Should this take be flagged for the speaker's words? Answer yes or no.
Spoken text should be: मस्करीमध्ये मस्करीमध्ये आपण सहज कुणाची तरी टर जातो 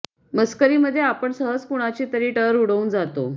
yes